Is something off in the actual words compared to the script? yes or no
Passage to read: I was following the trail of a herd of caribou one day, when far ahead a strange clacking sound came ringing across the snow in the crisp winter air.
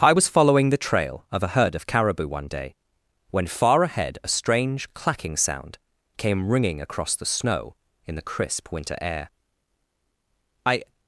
yes